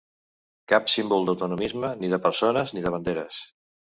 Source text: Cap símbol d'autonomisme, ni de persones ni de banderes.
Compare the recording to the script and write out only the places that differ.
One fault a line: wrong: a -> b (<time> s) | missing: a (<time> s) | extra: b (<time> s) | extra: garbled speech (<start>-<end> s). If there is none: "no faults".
no faults